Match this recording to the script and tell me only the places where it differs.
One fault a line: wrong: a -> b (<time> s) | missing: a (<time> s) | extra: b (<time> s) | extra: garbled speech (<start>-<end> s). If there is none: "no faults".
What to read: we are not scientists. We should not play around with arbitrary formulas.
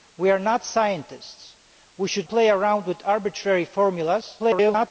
missing: not (2.3 s)
extra: garbled speech (4.4-4.9 s)